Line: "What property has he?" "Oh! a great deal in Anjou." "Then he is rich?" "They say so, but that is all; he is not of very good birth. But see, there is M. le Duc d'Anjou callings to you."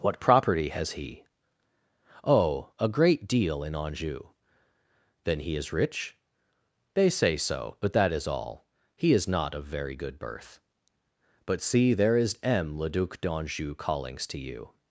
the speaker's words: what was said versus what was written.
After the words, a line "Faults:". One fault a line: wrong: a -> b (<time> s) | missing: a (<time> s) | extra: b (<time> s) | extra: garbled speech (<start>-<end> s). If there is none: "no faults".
"What property has he?" "Oh! a great deal in Anjou." "Then he is rich?" "They say so, but that is all; he is not of very good birth. But see, there is M. le Duc d'Anjou callings to you."
Faults:
no faults